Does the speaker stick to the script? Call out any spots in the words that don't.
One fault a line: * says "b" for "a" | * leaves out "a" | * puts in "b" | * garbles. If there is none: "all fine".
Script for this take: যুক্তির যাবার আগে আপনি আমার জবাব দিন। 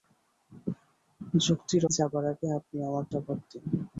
all fine